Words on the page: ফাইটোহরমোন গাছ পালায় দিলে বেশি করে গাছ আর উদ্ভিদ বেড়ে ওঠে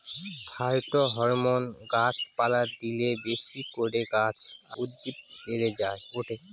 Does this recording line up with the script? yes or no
no